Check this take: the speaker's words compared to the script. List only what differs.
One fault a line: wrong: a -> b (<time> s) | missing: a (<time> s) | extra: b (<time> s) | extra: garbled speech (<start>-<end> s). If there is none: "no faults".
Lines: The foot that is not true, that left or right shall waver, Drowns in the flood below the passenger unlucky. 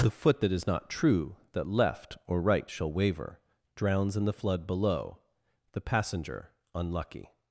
no faults